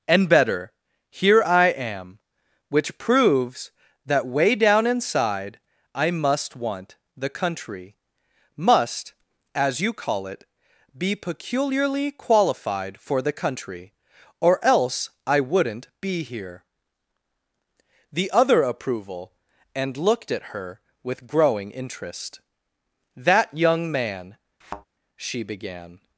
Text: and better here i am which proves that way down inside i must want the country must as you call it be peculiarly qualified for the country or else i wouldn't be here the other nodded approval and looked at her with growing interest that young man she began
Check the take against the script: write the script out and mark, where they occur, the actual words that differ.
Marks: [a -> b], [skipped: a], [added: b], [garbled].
and better here i am which proves that way down inside i must want the country must as you call it be peculiarly qualified for the country or else i wouldn't be here the other [skipped: nodded] approval and looked at her with growing interest that young man she began